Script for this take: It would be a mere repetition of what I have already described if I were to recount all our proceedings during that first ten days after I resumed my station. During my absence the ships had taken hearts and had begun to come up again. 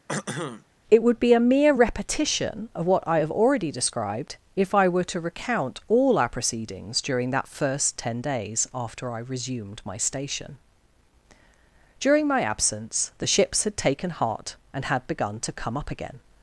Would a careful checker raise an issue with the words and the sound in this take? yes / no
yes